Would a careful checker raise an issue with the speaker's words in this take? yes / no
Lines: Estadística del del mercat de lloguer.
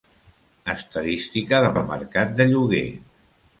no